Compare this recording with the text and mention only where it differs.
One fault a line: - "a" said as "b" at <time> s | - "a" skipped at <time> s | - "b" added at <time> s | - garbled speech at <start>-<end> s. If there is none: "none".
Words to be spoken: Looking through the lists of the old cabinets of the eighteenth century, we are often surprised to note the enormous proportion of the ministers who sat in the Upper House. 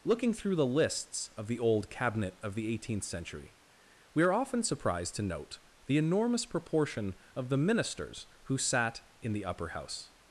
- "cabinets" said as "cabinet" at 1.9 s